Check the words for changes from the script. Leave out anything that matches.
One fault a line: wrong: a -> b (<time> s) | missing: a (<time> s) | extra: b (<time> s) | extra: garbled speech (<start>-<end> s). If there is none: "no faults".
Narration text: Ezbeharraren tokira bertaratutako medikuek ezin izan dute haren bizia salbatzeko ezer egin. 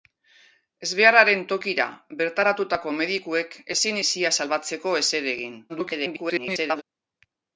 missing: izan dute haren (4.0 s)
extra: garbled speech (5.7-6.8 s)